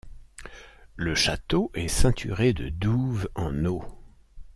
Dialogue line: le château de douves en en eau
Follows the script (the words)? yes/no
no